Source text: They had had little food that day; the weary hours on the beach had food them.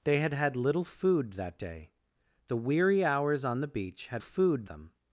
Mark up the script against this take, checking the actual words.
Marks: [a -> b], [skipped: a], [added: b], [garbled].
They had had little food that day; the weary hours on the beach had food them.